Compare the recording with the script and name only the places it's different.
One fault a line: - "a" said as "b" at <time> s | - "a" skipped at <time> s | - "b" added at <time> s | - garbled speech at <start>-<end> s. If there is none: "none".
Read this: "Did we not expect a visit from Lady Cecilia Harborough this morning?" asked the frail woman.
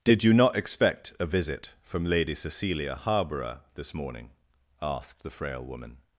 - "we" said as "you" at 0.2 s